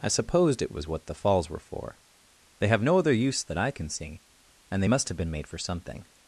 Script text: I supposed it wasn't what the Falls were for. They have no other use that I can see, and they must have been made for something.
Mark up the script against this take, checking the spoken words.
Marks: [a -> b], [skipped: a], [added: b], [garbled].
I supposed it [wasn't -> was] what the Falls were for. They have no other use that I can see, and they must have been made for something.